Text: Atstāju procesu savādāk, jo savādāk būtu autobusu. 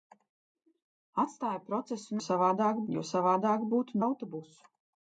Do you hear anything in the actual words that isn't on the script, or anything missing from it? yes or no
no